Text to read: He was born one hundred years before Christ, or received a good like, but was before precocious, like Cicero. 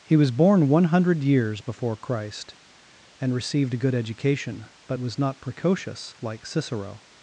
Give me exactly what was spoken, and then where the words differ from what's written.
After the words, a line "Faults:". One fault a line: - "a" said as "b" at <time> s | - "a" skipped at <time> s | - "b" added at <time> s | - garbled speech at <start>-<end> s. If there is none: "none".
He was born one hundred years before Christ, and received a good education, but was not precocious, like Cicero.
Faults:
- "or" said as "and" at 3.2 s
- "like" said as "education" at 3.9 s
- "before" said as "not" at 5.2 s